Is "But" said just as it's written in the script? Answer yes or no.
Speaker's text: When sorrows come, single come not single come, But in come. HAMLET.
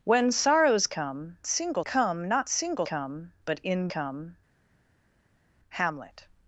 yes